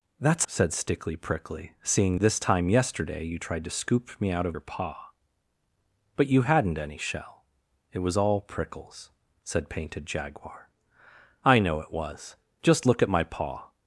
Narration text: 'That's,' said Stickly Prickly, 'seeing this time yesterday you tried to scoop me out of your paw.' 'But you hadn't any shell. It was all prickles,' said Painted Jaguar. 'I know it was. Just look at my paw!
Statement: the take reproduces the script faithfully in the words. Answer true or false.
true